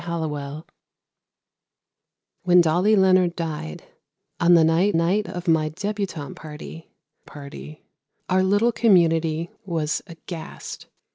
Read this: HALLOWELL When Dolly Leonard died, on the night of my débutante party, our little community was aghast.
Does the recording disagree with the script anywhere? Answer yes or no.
yes